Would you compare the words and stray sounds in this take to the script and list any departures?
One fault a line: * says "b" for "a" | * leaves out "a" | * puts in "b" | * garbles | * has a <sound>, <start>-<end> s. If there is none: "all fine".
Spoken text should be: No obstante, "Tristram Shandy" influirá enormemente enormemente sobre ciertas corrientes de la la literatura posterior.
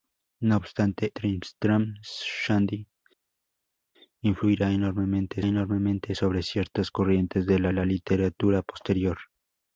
all fine